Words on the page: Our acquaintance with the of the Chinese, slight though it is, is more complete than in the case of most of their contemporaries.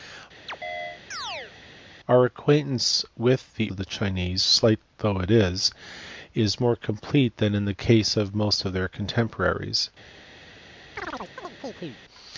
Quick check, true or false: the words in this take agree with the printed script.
true